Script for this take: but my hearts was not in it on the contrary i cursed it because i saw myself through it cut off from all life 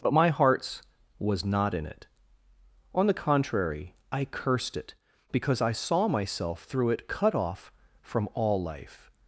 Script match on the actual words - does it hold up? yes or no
yes